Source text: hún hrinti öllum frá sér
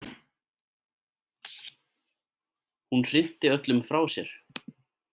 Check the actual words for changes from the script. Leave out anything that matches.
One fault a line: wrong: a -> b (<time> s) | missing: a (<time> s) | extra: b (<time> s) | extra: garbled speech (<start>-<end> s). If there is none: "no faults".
no faults